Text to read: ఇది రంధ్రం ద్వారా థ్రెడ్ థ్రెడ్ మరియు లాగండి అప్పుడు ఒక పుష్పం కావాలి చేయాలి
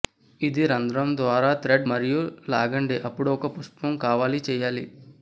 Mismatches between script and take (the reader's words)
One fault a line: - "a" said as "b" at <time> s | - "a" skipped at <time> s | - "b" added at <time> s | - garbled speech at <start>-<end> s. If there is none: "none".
- "థ్రెడ్" skipped at 1.9 s